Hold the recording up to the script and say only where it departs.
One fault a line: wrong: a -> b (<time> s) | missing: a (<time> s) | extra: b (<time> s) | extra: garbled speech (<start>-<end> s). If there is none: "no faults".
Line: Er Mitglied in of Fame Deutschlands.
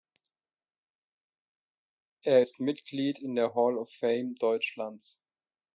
extra: ist (2.4 s)
extra: der Hall (3.3 s)